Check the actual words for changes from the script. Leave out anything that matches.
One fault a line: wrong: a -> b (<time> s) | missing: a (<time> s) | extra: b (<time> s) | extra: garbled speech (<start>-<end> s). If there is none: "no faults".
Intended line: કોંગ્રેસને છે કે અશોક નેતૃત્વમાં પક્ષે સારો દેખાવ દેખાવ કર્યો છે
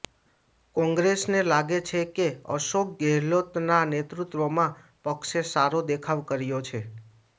extra: લાગે (1.4 s)
extra: ગેહલોતના (3.0 s)
missing: દેખાવ (6.2 s)